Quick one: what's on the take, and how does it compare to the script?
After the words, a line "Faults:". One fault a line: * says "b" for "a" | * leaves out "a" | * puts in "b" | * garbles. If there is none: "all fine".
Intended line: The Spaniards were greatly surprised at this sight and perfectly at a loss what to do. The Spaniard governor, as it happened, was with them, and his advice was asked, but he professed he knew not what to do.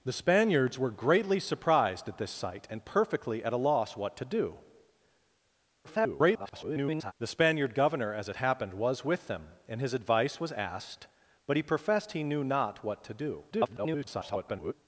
The Spaniards were greatly surprised at this sight and perfectly at a loss what to do. [garbled] The Spaniard governor, as it happened, was with them, and his advice was asked, but he professed he knew not what to do. [garbled]
Faults:
* garbles
* garbles